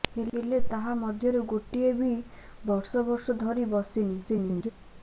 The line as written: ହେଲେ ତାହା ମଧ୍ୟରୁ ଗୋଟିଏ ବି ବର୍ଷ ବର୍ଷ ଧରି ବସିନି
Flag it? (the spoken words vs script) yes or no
yes